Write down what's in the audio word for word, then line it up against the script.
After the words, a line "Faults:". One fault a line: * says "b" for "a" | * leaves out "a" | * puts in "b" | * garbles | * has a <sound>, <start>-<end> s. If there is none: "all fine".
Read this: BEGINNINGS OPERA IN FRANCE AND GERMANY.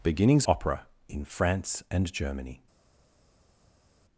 BEGINNINGS OPERA IN FRANCE AND GERMANY.
Faults:
all fine